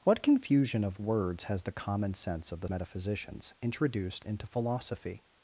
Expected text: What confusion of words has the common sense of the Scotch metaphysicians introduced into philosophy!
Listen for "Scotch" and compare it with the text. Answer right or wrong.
wrong